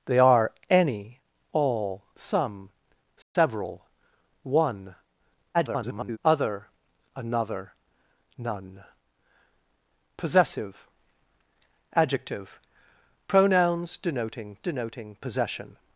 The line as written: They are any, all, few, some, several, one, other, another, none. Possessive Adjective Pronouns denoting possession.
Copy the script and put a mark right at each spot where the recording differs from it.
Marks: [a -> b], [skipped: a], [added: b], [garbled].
They are any, all, [skipped: few,] some, several, one, [garbled] other, another, none. Possessive Adjective Pronouns denoting [added: denoting] possession.